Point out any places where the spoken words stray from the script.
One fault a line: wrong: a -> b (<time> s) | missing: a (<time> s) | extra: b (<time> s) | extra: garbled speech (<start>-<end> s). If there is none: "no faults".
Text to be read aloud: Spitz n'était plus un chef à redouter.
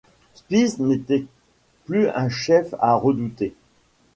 no faults